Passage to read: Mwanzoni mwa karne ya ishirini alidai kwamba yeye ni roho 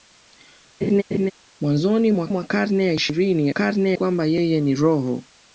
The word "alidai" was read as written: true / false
false